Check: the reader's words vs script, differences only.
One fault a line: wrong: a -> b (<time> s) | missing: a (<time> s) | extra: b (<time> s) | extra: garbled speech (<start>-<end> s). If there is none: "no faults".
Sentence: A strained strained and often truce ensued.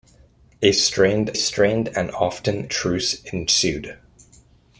no faults